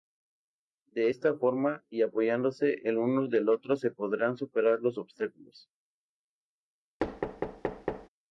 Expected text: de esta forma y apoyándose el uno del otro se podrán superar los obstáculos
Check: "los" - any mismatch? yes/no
no